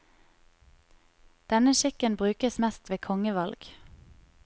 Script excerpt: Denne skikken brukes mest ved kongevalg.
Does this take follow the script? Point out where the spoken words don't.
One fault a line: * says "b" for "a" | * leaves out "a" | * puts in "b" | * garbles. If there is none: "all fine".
all fine